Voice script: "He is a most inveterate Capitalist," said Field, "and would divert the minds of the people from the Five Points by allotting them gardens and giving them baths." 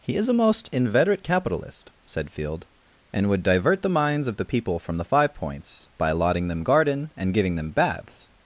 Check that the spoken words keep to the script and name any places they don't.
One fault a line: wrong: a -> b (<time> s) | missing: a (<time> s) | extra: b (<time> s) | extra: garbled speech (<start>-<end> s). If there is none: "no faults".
wrong: gardens -> garden (6.6 s)